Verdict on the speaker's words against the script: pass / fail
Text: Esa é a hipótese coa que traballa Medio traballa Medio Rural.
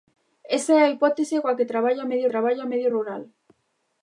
pass